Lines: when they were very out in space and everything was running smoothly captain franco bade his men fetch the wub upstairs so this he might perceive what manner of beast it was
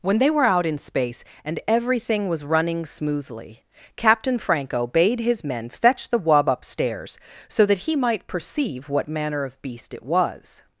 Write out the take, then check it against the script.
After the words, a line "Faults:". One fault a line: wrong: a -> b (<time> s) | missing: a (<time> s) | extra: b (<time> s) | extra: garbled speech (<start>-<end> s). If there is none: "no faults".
when they were out in space and everything was running smoothly captain franco bade his men fetch the wub upstairs so that he might perceive what manner of beast it was
Faults:
missing: very (0.5 s)
wrong: this -> that (7.7 s)